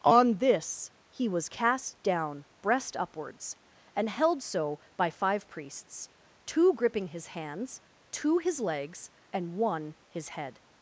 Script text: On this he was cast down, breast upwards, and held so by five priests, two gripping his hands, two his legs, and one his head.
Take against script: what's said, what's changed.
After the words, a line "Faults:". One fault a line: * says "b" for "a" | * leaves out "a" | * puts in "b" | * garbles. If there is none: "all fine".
On this he was cast down, breast upwards, and held so by five priests, two gripping his hands, two his legs, and one his head.
Faults:
all fine